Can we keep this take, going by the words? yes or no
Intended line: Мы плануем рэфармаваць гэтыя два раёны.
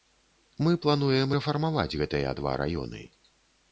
yes